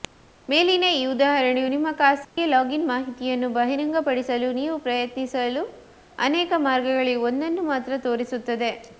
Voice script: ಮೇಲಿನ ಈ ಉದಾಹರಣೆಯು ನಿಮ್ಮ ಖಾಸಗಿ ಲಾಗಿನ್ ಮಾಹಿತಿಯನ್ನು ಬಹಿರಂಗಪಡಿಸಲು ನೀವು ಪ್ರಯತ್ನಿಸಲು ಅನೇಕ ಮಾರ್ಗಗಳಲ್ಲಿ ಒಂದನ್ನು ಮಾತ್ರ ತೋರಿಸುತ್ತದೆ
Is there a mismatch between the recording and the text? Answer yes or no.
no